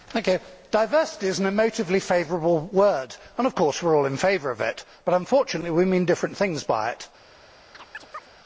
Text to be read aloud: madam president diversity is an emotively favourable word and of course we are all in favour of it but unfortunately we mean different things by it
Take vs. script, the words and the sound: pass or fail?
fail